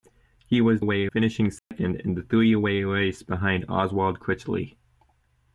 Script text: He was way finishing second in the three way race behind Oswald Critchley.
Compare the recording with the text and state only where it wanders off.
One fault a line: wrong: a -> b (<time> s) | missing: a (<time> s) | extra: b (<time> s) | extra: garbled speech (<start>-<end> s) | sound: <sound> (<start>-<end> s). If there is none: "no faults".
sound: dropout (1.6-1.7 s)